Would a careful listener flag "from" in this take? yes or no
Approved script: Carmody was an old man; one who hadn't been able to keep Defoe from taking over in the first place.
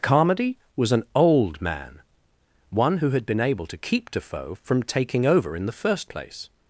no